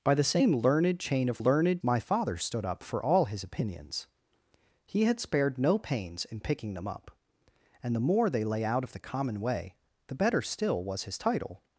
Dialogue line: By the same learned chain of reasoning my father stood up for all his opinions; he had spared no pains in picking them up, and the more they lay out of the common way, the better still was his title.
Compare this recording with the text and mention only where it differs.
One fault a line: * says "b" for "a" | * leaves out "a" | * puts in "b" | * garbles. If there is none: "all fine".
* says "learned" for "reasoning"